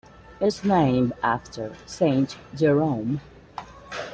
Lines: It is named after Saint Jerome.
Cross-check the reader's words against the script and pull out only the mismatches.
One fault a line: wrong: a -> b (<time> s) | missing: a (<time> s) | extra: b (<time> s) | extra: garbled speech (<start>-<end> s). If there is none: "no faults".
no faults